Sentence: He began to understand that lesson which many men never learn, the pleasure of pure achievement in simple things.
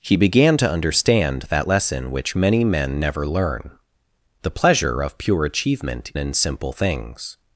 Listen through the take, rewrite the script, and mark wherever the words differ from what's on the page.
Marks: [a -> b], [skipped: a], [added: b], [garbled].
He began to understand that lesson which many men never learn, the pleasure of pure achievement in simple things.